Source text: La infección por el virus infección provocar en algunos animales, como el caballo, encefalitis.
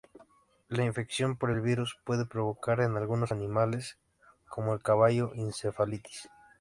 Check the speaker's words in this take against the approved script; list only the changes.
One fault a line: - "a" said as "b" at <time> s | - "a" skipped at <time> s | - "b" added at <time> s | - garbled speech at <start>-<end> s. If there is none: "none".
- "infección" said as "puede" at 2.0 s